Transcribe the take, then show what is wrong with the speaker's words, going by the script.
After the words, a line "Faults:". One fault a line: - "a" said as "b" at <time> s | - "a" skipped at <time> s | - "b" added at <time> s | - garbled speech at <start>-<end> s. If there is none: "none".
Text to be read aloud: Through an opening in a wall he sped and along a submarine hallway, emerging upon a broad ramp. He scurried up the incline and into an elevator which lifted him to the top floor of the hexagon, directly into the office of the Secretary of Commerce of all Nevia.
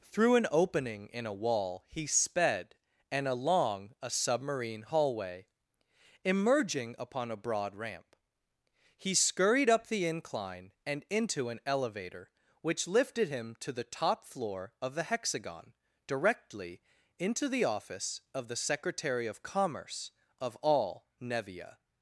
Through an opening in a wall he sped and along a submarine hallway, emerging upon a broad ramp. He scurried up the incline and into an elevator which lifted him to the top floor of the hexagon, directly into the office of the Secretary of Commerce of all Nevia.
Faults:
none